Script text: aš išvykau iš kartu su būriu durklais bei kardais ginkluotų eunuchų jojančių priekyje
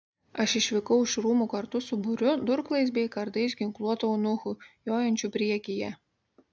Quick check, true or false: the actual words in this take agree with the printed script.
false